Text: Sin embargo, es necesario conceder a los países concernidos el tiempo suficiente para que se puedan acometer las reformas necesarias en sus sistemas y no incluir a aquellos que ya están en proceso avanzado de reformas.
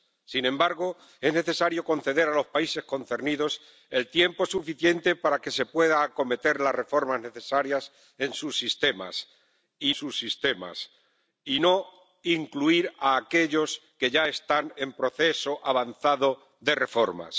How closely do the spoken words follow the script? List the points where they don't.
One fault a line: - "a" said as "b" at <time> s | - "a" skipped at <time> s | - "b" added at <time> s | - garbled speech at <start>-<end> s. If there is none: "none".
- "sus sistemas y" added at 9.9 s